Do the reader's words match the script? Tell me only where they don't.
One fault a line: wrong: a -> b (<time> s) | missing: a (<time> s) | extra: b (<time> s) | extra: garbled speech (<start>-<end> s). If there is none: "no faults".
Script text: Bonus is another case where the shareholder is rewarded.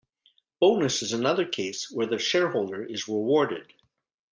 no faults